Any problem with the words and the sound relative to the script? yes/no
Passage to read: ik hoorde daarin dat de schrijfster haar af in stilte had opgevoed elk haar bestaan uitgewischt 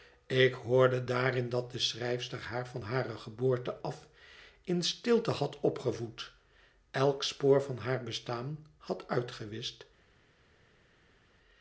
yes